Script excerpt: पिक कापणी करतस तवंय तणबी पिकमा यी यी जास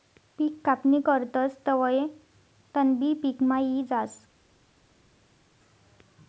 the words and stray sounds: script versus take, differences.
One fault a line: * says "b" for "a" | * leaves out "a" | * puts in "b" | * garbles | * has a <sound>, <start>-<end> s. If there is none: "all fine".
* leaves out "यी"